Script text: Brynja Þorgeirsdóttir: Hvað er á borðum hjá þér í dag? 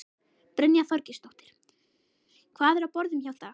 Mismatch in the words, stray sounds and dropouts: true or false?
true